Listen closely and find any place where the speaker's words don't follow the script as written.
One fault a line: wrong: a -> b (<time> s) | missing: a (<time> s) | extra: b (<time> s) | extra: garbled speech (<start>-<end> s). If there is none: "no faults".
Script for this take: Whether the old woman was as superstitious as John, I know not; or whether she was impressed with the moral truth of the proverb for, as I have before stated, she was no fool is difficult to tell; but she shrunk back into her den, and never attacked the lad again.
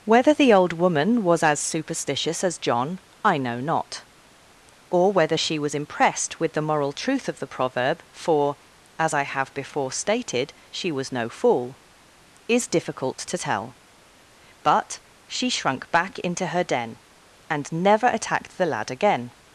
no faults